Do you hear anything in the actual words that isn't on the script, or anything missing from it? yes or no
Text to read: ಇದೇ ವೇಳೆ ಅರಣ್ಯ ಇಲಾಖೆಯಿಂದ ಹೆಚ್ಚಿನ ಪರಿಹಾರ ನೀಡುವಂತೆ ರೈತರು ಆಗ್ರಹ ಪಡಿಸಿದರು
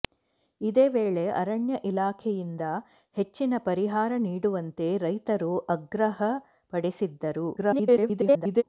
yes